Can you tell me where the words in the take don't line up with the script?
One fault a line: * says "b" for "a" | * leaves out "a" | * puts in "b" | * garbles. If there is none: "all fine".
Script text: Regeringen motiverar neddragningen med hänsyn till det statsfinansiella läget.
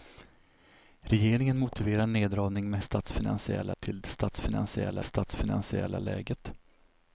* says "statsfinansiella" for "hänsyn"
* puts in "statsfinansiella"